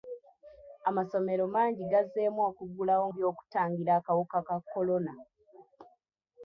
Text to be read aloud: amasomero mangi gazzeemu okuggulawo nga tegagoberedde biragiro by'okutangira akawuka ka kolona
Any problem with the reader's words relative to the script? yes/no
yes